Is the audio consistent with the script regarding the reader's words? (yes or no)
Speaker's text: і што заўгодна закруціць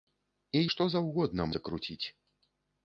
yes